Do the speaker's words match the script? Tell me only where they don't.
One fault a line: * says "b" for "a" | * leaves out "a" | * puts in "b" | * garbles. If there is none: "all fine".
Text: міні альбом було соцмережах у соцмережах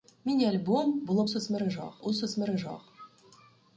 all fine